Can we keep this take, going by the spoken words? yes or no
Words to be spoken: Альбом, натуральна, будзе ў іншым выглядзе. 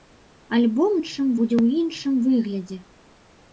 no